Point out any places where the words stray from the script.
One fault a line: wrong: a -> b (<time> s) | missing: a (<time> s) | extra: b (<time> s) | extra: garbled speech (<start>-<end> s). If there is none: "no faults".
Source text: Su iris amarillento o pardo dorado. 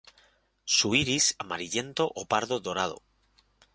no faults